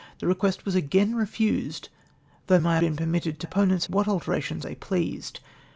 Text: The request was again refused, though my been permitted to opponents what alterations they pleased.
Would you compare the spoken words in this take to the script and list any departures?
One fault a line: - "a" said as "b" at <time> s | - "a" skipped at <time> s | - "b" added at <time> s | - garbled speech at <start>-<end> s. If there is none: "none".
none